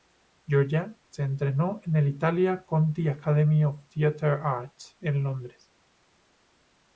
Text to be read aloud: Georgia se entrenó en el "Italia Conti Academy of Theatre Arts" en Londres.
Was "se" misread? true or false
false